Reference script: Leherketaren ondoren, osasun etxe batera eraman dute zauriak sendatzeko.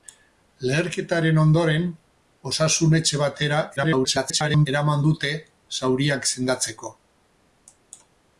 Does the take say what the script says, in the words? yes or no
no